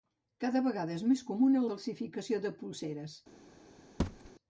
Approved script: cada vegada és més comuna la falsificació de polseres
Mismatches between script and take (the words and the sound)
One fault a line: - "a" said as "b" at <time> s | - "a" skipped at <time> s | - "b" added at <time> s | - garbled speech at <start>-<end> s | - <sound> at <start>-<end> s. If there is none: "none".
- "la" skipped at 1.6 s
- thud at 4.0-4.3 s